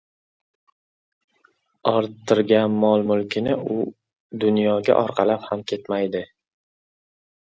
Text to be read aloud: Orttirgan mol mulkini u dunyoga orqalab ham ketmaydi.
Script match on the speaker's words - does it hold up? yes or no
yes